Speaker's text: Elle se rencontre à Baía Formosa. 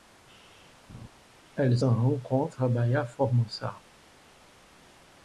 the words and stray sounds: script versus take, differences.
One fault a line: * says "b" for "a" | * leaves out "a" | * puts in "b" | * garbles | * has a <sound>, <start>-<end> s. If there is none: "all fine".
* has a laugh, 0.9-1.1 s
* leaves out "se"